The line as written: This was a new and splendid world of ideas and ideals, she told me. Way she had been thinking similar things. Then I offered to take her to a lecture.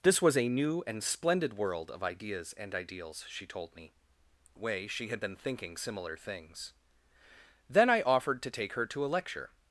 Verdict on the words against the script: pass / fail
pass